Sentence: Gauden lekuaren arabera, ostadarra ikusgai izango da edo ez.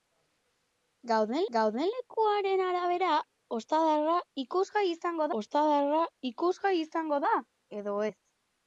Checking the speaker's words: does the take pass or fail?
fail